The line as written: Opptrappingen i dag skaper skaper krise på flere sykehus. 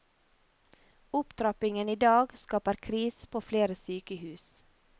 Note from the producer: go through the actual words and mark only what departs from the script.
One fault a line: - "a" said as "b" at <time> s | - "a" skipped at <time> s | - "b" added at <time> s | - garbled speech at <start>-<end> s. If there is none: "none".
- "skaper" skipped at 2.7 s